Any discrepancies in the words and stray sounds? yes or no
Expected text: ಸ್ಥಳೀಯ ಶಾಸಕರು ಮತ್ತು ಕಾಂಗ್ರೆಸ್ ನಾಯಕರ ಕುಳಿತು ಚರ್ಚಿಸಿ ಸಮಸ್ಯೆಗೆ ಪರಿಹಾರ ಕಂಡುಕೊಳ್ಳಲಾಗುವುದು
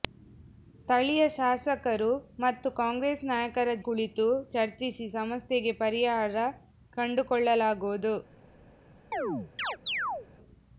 yes